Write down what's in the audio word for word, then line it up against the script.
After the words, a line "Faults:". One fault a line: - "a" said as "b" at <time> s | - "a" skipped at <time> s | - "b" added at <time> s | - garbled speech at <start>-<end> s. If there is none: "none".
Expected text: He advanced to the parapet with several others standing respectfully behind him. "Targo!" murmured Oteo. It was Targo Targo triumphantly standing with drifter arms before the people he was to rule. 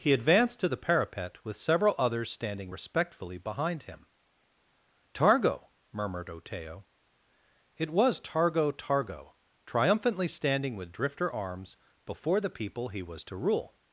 He advanced to the parapet with several others standing respectfully behind him. "Targo!" murmured Oteo. It was Targo Targo triumphantly standing with drifter arms before the people he was to rule.
Faults:
none